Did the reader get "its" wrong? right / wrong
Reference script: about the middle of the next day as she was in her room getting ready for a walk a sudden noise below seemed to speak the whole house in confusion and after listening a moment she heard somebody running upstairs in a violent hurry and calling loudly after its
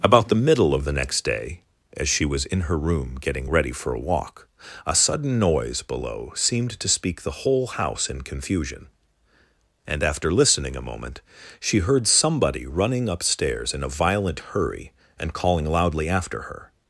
wrong